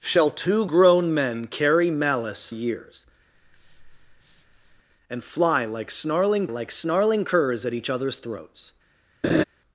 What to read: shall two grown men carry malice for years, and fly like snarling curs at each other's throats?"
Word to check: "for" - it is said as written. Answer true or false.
false